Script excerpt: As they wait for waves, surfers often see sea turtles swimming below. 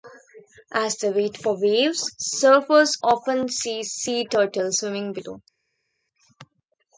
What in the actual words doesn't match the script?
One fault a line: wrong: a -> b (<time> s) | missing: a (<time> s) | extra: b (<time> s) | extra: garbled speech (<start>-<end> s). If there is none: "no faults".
no faults